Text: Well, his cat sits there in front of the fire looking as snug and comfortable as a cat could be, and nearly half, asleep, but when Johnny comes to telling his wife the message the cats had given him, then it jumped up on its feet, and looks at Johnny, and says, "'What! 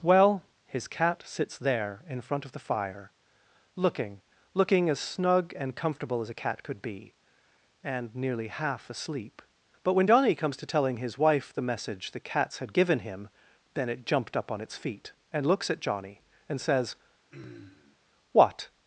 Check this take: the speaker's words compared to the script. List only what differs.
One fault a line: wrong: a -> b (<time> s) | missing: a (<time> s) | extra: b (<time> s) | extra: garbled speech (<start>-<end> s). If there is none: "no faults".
extra: looking (4.5 s)